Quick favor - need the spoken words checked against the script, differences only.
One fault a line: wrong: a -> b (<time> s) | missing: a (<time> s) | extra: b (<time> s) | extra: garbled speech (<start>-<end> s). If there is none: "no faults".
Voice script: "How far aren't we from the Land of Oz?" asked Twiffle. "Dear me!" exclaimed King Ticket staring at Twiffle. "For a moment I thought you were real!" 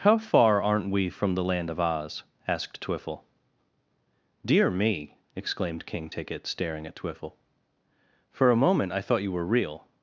no faults